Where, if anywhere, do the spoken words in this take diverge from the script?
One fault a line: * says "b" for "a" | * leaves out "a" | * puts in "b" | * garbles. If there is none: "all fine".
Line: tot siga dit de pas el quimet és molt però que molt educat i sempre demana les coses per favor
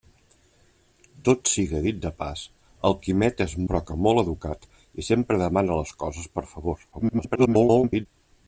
* leaves out "molt"
* garbles